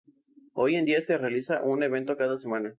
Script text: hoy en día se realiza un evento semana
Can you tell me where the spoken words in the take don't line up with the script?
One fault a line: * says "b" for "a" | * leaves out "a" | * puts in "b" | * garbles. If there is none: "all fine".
* puts in "cada"